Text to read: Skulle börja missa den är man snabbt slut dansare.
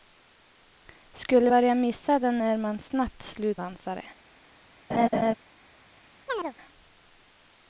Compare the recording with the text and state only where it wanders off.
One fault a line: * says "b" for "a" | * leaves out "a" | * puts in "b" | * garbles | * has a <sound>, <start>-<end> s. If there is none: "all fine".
* has a laugh, 4.9-5.3 s
* has a chirp, 6.3-6.5 s